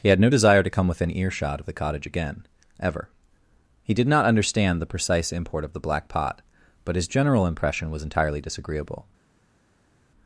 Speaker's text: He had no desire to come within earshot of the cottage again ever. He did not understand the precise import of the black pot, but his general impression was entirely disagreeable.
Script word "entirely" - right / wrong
right